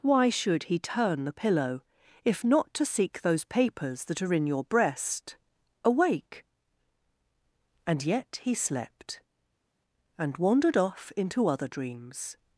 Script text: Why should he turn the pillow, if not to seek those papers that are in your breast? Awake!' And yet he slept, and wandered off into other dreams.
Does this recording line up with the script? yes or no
yes